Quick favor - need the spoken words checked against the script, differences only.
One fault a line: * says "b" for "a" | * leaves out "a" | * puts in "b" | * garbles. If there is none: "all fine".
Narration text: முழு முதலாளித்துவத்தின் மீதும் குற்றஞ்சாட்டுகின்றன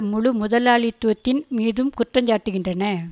all fine